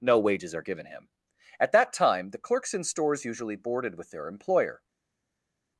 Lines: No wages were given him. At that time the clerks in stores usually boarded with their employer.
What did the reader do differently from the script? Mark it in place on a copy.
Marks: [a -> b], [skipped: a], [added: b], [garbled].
No wages [were -> are] given him. At that time the clerks in stores usually boarded with their employer.